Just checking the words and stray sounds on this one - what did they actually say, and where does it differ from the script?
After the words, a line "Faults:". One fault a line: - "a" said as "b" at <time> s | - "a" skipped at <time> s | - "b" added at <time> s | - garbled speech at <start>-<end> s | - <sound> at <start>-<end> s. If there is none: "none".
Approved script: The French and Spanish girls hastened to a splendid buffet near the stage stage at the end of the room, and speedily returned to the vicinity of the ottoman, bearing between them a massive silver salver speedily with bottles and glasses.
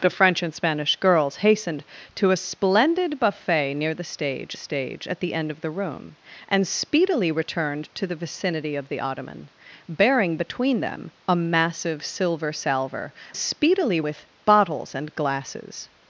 The French and Spanish girls hastened to a splendid buffet near the stage stage at the end of the room, and speedily returned to the vicinity of the ottoman, bearing between them a massive silver salver speedily with bottles and glasses.
Faults:
none